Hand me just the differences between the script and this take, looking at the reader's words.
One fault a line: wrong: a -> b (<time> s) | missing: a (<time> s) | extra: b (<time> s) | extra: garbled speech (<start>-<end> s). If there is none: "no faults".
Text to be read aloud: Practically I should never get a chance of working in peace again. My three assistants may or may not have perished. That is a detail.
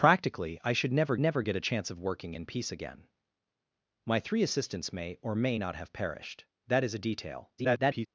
extra: never (1.2 s)
extra: garbled speech (7.6-8.1 s)